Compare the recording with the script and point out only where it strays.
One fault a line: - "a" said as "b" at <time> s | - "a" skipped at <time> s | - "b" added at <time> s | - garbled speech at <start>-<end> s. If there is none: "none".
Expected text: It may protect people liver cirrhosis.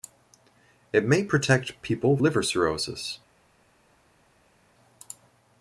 none